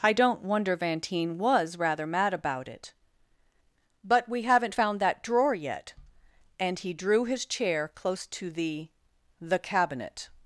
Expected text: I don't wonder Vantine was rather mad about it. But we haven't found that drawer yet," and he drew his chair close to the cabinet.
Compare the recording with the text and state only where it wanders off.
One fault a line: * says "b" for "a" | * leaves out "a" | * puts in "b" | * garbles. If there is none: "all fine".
* puts in "the"